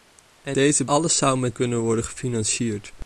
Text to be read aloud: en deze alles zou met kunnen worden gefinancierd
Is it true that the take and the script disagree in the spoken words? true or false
false